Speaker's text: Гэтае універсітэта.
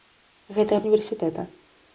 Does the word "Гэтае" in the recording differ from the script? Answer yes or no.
no